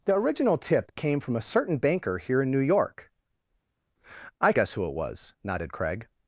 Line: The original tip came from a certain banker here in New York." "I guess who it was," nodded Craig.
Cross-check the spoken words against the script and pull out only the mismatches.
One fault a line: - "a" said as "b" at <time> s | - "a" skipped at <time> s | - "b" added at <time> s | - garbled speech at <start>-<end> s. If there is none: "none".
none